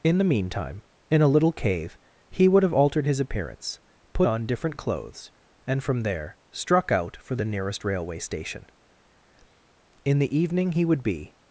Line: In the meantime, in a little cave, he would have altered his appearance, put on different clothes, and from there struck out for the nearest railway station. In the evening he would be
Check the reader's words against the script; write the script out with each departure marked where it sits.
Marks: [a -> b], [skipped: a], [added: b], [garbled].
In the meantime, in a little cave, he would have altered his appearance, put on different clothes, and from there struck out for the nearest railway station. In the evening he would be